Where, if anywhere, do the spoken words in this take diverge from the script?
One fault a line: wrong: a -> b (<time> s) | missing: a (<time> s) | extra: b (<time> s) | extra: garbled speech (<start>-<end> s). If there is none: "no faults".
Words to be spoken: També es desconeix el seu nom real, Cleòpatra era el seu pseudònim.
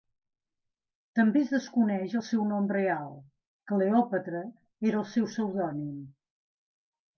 no faults